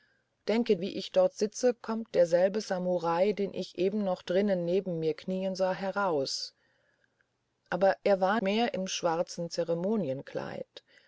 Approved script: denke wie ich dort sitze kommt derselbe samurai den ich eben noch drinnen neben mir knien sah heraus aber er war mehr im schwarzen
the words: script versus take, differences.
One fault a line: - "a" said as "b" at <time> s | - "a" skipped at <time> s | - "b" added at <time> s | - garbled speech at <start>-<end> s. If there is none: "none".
none